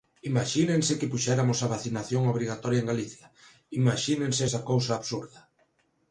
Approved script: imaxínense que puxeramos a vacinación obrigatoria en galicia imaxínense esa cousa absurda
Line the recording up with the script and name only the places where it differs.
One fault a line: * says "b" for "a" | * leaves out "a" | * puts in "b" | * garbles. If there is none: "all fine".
all fine